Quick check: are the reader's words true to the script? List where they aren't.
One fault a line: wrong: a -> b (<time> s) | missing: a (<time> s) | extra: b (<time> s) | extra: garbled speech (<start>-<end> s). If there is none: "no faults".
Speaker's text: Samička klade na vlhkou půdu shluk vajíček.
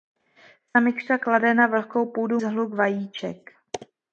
no faults